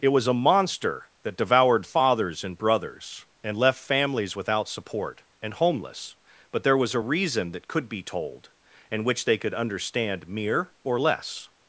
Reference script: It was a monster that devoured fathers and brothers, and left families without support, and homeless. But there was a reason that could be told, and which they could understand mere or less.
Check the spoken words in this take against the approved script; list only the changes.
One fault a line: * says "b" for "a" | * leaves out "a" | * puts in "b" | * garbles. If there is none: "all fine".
all fine